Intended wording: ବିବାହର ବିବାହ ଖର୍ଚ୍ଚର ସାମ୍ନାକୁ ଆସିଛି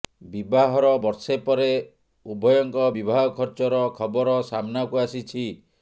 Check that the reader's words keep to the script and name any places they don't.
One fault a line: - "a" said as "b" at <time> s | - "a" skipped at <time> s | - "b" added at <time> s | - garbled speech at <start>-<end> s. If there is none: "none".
- "ବର୍ଷେ ପରେ ଉଭୟଙ୍କ" added at 1.0 s
- "ଖବର" added at 4.0 s